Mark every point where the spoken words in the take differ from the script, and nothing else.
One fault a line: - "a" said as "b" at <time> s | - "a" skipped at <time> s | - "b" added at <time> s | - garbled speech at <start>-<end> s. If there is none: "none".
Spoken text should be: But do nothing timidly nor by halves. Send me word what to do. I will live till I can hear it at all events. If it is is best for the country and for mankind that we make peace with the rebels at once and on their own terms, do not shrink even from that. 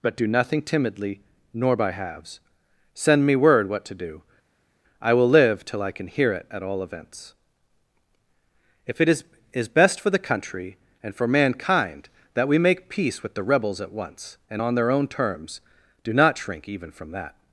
none